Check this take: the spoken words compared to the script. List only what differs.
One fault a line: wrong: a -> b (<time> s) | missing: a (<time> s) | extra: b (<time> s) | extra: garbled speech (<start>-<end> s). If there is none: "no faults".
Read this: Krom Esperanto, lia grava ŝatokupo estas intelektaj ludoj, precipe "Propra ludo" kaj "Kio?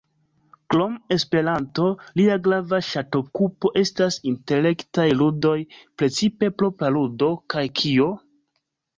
no faults